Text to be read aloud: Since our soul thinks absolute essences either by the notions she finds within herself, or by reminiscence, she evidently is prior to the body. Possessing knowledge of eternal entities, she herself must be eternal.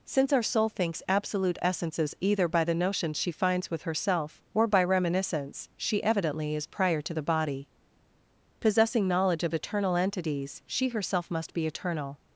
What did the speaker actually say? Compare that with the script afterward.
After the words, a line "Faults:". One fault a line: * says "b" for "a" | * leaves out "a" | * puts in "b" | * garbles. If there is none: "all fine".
Since our soul thinks absolute essences either by the notions she finds with herself, or by reminiscence, she evidently is prior to the body. Possessing knowledge of eternal entities, she herself must be eternal.
Faults:
* says "with" for "within"